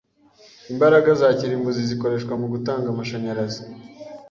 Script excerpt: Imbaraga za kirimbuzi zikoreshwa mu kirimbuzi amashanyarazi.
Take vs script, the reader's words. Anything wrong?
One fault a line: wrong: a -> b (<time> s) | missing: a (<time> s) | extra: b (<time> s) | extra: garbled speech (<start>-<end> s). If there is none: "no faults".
wrong: kirimbuzi -> gutanga (2.5 s)